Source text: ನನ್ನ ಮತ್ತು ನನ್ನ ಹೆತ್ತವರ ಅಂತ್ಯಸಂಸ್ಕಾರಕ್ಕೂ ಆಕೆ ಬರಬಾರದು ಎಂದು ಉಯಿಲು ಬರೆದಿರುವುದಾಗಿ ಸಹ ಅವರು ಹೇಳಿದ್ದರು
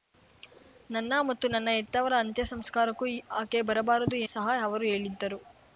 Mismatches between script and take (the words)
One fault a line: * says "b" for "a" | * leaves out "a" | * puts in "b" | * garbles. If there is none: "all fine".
* leaves out "ಎಂದು ಉಯಿಲು ಬರೆದಿರುವುದಾಗಿ"